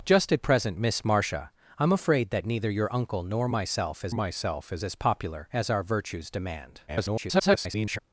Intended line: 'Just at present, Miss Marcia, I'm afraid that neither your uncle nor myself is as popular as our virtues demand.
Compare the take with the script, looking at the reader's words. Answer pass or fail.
fail